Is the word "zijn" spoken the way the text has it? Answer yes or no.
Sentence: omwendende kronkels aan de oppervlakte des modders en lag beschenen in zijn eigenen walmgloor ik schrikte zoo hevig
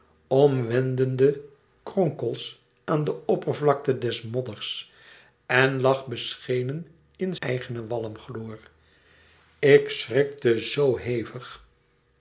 no